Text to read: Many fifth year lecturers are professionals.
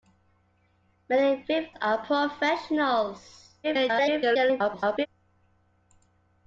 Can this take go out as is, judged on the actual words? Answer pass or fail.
fail